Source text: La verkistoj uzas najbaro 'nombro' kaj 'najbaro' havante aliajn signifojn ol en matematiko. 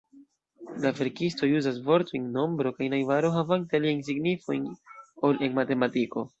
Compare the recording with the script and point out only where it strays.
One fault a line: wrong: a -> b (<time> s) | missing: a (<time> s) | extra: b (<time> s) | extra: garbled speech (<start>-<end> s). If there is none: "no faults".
wrong: najbaro -> vortojn (1.9 s)